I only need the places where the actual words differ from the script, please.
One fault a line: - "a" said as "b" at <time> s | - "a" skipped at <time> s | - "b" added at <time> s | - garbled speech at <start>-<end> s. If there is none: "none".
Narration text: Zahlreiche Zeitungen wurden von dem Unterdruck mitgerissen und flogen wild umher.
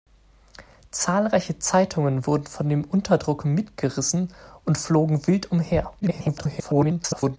- garbled speech at 6.0-7.4 s